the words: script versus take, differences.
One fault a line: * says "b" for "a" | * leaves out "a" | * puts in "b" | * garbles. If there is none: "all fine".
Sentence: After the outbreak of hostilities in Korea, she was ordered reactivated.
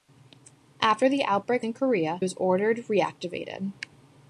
* leaves out "of hostilities"
* leaves out "she"